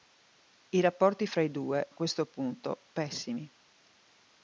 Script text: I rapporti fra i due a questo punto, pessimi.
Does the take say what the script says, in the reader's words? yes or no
yes